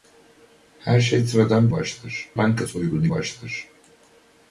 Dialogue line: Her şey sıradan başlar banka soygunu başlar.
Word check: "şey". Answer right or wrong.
right